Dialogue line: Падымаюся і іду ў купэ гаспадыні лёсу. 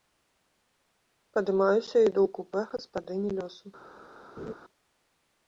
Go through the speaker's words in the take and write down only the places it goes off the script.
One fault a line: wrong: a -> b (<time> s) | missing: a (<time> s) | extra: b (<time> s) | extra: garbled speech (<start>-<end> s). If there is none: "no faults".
no faults